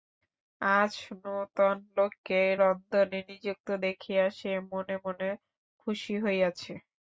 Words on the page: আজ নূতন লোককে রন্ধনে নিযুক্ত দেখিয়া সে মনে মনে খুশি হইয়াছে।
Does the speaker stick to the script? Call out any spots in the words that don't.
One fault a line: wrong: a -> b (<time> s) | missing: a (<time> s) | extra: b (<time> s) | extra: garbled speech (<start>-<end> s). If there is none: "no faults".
no faults